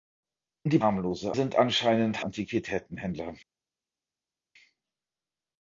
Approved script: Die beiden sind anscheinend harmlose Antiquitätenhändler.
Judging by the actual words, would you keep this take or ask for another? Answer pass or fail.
fail